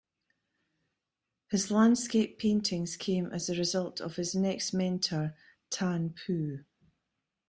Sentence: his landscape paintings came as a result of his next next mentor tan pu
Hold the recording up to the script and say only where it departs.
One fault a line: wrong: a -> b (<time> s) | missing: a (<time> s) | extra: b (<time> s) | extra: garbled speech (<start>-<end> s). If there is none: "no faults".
missing: next (4.7 s)